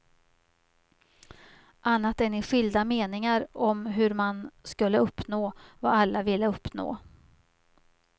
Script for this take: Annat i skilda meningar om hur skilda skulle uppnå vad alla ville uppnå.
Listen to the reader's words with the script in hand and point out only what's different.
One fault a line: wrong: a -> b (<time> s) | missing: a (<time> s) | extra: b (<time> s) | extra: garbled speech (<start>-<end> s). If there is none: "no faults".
extra: än (2.2 s)
wrong: skilda -> man (4.1 s)